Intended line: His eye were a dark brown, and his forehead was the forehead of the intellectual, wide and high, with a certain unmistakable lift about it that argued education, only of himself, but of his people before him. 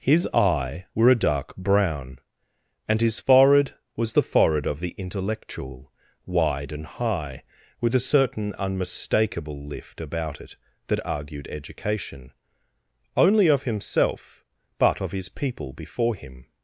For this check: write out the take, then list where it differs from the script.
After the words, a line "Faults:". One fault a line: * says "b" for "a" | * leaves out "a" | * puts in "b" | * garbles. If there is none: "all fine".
His eye were a dark brown, and his forehead was the forehead of the intellectual, wide and high, with a certain unmistakable lift about it that argued education, only of himself, but of his people before him.
Faults:
all fine